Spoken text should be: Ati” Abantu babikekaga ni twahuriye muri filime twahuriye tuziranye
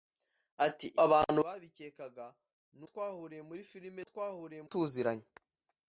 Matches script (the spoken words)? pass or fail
pass